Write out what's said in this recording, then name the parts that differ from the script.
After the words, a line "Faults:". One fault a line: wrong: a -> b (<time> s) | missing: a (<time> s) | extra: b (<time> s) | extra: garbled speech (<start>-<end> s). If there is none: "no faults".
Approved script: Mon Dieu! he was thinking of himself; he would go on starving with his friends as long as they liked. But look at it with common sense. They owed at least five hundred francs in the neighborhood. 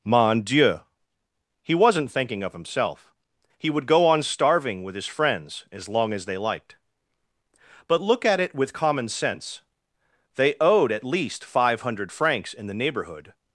Mon Dieu! he wasn't thinking of himself; he would go on starving with his friends as long as they liked. But look at it with common sense. They owed at least five hundred francs in the neighborhood.
Faults:
wrong: was -> wasn't (1.8 s)